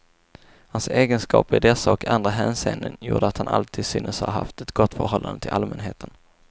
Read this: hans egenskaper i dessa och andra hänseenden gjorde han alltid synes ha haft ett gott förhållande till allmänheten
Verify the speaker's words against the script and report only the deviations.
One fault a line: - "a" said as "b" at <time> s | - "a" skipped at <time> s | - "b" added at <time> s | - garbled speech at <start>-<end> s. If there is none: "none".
- "att" added at 3.3 s